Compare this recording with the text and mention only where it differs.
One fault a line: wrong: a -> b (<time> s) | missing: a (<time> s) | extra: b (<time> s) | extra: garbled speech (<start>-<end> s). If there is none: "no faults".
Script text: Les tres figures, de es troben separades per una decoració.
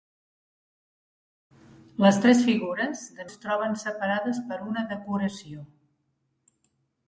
no faults